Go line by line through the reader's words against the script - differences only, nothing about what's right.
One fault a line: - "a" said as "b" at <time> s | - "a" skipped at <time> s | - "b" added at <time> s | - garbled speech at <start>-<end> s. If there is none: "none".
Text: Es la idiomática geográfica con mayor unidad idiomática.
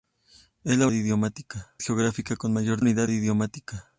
none